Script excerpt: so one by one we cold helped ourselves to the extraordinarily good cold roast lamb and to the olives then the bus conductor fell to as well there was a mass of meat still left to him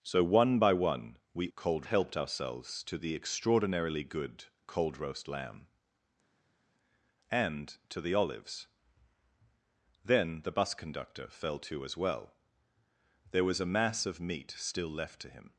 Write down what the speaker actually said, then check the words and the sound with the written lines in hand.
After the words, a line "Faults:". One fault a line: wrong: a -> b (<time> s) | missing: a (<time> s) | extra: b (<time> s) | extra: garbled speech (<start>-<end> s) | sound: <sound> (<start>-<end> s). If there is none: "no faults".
so one by one we cold helped ourselves to the extraordinarily good cold roast lamb and to the olives then the bus conductor fell to as well there was a mass of meat still left to him
Faults:
no faults